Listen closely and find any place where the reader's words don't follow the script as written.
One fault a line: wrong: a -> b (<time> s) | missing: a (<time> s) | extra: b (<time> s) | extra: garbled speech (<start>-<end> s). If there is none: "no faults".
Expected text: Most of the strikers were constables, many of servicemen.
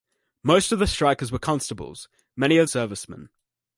no faults